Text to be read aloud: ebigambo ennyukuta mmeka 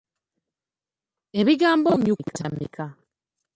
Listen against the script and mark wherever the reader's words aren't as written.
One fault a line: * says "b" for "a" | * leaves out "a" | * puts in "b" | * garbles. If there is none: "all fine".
all fine